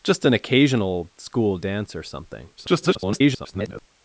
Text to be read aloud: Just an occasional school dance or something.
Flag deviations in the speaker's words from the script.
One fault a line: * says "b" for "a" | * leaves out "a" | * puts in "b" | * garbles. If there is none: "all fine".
* garbles